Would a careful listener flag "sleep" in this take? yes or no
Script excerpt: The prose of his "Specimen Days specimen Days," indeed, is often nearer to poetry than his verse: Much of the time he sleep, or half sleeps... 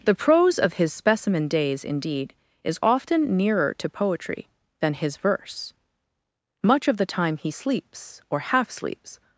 yes